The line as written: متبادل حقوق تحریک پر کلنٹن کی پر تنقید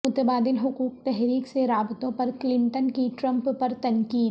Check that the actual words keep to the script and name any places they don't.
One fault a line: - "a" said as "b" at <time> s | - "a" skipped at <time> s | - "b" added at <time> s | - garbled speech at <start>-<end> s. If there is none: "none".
- "سے رابطوں" added at 1.5 s
- "ٹرمپ" added at 3.2 s